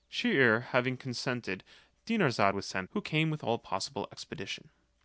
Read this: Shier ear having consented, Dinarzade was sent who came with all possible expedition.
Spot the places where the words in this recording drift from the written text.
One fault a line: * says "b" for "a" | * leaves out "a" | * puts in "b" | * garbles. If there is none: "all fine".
all fine